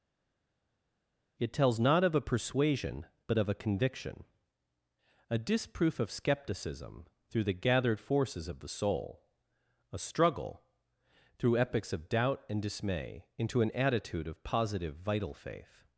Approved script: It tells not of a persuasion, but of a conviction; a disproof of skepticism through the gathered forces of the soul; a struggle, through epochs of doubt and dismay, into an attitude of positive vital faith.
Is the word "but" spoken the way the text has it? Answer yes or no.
yes